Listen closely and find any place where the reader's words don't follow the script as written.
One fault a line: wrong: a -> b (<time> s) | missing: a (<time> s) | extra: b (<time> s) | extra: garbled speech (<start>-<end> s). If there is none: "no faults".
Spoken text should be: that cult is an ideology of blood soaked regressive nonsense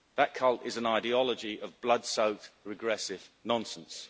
no faults